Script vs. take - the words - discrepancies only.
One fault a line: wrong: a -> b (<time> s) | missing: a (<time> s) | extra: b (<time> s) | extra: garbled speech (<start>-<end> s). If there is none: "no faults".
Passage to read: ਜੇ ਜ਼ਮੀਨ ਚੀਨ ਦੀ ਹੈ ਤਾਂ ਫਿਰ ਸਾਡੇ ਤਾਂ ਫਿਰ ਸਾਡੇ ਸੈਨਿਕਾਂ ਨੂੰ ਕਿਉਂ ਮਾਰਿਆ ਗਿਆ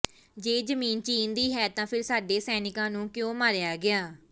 missing: ਤਾਂ ਫਿਰ ਸਾਡੇ (2.4 s)